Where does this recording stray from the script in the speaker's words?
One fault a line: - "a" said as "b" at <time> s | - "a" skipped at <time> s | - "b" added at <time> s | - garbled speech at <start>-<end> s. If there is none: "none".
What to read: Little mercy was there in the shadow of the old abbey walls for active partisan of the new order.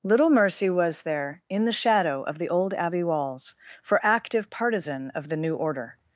none